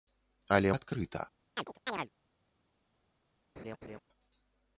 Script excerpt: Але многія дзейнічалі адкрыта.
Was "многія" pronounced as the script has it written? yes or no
no